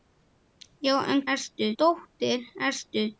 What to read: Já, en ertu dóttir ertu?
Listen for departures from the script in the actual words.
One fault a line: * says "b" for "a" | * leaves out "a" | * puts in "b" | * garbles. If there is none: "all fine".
all fine